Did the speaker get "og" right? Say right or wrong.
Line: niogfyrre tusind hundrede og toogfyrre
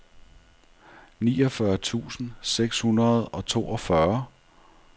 right